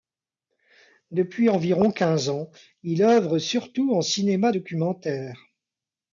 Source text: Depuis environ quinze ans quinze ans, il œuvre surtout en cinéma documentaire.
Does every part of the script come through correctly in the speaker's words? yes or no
no